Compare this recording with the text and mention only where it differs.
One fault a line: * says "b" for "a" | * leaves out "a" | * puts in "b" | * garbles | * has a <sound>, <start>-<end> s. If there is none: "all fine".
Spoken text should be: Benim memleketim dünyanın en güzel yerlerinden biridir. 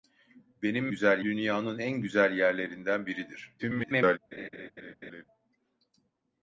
* says "güzel" for "memleketim"
* garbles
* has a laugh, 4.3-5.2 s